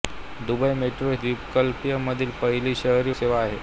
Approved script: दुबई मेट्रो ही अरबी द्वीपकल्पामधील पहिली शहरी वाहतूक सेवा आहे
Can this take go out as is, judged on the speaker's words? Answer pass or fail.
fail